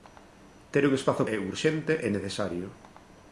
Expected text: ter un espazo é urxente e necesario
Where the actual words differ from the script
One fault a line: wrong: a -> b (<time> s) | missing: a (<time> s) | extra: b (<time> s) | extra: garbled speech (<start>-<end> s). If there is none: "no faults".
no faults